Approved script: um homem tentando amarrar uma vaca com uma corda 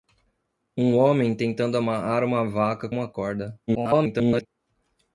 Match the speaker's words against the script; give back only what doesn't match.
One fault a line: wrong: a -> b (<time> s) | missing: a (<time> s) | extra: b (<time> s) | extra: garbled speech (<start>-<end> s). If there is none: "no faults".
missing: com (2.9 s)
extra: garbled speech (3.7-4.5 s)